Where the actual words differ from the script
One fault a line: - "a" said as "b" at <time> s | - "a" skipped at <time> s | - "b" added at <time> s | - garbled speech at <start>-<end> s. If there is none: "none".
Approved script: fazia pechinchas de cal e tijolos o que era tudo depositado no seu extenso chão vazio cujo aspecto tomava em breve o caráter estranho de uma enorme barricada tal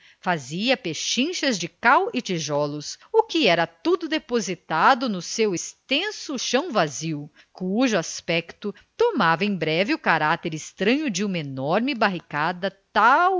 none